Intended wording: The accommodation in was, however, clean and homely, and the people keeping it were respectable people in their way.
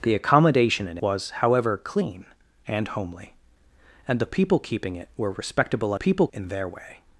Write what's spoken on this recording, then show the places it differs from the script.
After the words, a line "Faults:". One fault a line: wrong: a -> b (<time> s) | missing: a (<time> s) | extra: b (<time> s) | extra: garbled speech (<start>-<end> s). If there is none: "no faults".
The accommodation in was, however, clean and homely, and the people keeping it were respectable people in their way.
Faults:
no faults